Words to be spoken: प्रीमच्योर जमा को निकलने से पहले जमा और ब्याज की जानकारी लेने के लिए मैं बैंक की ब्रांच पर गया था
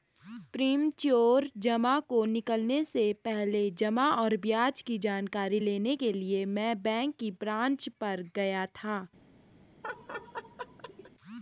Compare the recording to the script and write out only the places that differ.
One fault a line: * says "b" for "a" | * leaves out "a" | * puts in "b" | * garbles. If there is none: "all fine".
all fine